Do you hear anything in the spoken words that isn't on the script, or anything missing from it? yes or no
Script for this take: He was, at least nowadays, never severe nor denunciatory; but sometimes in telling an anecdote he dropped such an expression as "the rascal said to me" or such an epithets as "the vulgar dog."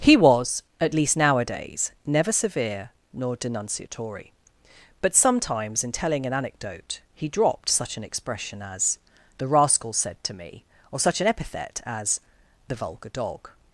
yes